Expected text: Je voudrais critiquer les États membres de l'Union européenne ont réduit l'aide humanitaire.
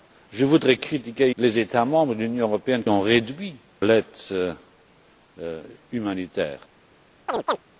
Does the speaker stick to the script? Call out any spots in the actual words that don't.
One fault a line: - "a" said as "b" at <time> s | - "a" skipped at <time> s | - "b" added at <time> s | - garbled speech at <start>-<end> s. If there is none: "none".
none